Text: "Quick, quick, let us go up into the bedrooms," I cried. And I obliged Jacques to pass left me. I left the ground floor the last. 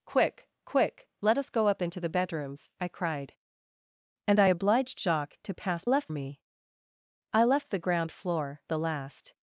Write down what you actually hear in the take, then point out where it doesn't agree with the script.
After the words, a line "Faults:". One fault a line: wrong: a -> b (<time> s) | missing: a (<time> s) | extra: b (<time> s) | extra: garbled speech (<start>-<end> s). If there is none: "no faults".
"Quick, quick, let us go up into the bedrooms," I cried. And I obliged Jacques to pass left me. I left the ground floor the last.
Faults:
no faults